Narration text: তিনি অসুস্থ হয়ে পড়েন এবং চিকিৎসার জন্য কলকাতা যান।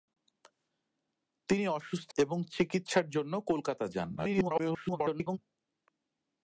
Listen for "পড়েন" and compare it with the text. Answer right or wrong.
wrong